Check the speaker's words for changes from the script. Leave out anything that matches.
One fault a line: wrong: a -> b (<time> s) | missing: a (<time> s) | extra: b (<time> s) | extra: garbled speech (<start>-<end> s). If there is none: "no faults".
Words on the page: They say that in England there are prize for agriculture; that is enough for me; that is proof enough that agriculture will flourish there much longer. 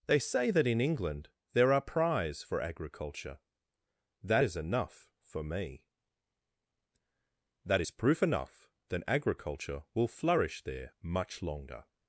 no faults